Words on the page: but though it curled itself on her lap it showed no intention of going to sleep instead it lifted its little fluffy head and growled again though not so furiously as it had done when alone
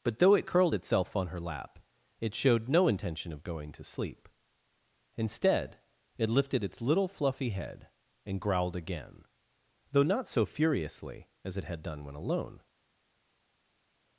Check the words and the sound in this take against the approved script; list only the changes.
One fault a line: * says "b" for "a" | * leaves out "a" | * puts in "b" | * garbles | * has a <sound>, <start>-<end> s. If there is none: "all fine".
all fine